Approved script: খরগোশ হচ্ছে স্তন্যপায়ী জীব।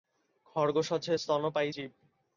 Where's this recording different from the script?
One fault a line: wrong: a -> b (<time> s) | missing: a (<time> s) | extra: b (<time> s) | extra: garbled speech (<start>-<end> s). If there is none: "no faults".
no faults